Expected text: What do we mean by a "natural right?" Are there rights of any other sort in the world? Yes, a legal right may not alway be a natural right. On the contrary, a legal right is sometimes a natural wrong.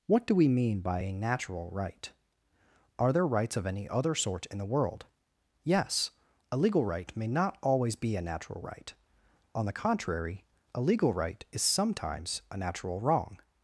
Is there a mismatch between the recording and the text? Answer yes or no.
yes